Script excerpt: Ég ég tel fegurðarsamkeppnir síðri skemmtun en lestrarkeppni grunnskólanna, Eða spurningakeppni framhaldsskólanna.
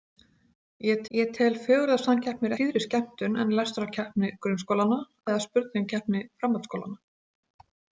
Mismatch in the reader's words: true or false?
false